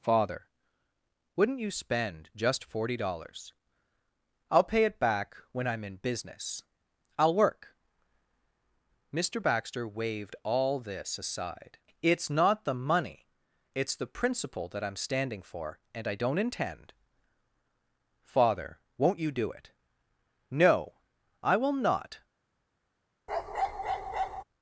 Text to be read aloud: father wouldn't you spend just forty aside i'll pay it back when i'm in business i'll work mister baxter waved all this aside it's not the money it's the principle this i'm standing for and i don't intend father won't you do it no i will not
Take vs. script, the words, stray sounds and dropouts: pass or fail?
fail